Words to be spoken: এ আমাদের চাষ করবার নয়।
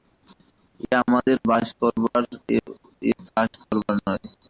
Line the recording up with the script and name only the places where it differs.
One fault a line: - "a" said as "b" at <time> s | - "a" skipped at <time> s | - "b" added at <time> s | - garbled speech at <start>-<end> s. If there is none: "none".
- "বাস করবার এ" added at 1.5 s